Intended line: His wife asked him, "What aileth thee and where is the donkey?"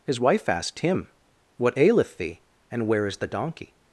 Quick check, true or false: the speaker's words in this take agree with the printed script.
true